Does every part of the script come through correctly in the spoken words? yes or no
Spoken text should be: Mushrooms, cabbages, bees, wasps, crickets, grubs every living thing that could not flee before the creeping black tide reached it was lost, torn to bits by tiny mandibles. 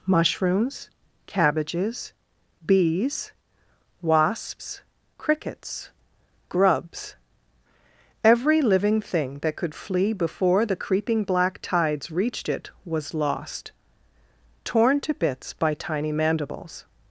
no